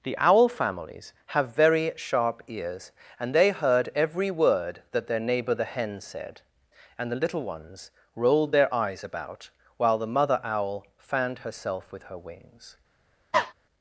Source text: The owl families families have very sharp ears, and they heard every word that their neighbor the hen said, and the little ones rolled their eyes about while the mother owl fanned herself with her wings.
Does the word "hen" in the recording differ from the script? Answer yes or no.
no